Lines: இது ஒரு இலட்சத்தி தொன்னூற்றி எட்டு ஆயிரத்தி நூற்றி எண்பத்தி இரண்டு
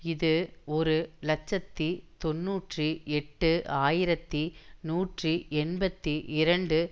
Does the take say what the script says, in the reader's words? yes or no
yes